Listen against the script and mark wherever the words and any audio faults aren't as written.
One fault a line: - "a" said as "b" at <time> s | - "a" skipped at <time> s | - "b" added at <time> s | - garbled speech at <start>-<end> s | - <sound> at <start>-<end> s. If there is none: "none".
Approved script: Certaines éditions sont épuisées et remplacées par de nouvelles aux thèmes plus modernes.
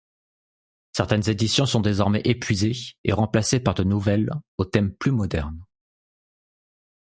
- "désormais" added at 1.8 s